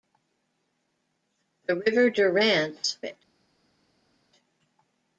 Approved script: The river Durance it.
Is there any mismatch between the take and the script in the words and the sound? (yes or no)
no